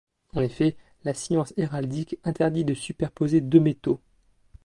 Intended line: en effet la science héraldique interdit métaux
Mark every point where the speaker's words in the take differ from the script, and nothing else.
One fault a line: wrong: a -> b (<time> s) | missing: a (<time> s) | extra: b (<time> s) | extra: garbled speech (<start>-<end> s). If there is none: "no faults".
extra: de superposer deux (2.6 s)